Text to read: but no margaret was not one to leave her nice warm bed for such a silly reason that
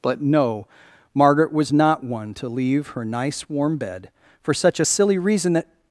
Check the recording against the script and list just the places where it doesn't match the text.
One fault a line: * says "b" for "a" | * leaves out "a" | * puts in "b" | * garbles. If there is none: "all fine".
all fine